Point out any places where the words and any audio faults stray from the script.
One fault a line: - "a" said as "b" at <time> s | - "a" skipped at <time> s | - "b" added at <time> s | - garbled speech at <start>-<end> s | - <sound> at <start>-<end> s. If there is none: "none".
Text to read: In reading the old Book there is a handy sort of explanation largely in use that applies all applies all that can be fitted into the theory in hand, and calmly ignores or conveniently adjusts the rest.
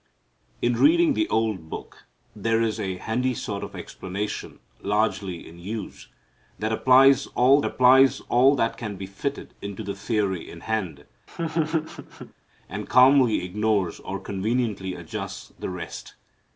- laugh at 11.3-12.3 s